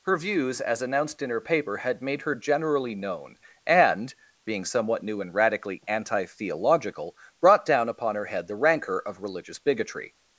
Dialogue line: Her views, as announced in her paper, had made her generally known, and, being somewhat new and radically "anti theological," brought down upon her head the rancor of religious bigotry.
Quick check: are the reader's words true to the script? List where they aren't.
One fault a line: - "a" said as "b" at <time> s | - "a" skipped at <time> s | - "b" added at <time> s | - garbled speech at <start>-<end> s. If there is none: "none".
none